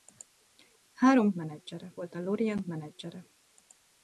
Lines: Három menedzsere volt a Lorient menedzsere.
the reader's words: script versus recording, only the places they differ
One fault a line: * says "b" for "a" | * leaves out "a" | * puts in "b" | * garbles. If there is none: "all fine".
all fine